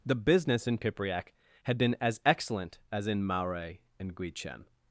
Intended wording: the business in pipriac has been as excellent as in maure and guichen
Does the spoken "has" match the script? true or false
false